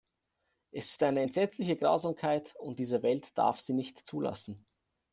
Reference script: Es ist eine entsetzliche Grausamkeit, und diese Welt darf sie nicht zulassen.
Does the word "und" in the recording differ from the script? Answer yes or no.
no